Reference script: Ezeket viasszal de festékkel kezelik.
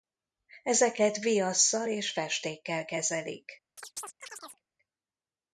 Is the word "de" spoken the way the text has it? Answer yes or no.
no